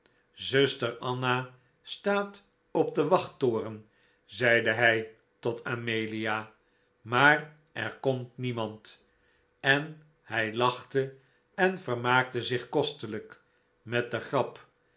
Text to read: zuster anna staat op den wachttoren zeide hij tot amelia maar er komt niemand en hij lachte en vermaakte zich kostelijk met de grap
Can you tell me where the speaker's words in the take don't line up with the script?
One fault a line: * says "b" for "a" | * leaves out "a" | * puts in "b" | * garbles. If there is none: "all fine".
all fine